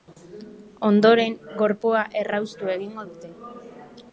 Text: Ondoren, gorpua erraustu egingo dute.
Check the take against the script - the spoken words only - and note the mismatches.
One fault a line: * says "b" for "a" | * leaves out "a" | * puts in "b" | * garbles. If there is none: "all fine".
all fine